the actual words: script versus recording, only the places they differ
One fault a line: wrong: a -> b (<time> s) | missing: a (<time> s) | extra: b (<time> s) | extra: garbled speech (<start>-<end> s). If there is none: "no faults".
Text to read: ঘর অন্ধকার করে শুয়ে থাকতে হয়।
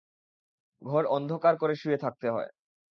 no faults